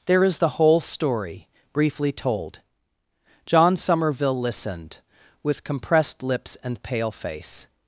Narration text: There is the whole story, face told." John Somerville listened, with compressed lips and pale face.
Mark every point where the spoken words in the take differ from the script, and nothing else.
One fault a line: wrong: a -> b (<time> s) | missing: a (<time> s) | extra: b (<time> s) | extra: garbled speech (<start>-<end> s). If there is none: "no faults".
wrong: face -> briefly (1.7 s)